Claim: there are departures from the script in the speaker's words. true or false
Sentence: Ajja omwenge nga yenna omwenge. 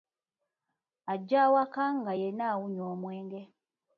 true